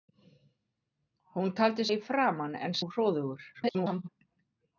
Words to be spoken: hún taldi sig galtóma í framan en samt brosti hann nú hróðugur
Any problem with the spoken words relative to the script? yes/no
yes